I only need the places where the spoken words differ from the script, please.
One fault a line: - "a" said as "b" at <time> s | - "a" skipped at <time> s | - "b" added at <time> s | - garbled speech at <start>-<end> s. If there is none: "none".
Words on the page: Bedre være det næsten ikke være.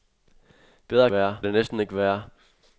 none